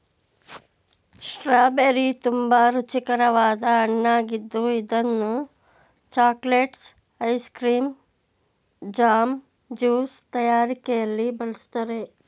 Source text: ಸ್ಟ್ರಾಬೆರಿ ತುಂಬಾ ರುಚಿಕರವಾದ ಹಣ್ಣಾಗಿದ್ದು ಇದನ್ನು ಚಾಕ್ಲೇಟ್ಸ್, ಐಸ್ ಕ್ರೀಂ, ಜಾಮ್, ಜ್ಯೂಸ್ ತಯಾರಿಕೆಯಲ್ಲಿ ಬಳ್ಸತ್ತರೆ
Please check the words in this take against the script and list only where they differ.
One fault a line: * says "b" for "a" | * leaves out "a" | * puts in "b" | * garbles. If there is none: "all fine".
all fine